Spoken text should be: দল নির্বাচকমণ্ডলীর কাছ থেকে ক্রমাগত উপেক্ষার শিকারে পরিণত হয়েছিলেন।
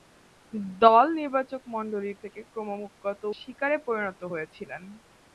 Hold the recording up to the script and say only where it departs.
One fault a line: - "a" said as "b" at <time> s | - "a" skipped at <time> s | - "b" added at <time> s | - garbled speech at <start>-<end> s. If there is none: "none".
- "কাছ" skipped at 2.2 s
- "উপেক্ষার" skipped at 3.2 s